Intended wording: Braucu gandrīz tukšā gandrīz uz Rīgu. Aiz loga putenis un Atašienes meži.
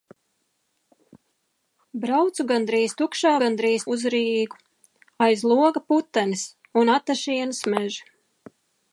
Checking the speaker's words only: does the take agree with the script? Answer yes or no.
yes